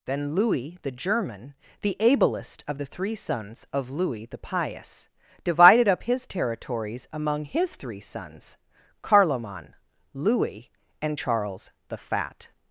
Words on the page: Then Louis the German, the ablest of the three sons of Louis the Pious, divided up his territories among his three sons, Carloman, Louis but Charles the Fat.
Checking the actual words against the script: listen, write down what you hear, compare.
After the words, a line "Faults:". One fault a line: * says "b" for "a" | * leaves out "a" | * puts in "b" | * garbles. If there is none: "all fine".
Then Louis the German, the ablest of the three sons of Louis the Pious, divided up his territories among his three sons, Carloman, Louis and Charles the Fat.
Faults:
* says "and" for "but"